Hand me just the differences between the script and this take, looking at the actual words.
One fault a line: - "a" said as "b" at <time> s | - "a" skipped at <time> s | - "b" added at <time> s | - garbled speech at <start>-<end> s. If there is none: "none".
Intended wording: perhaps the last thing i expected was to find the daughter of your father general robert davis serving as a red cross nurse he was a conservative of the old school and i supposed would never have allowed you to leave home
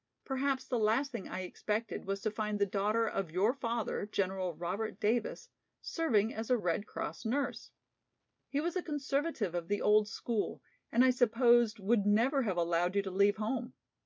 none